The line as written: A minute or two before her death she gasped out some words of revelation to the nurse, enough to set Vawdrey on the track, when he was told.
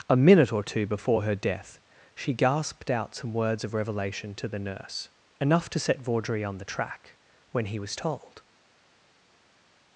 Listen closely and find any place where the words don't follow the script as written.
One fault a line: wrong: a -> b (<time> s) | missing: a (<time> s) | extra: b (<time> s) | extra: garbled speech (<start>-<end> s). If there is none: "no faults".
no faults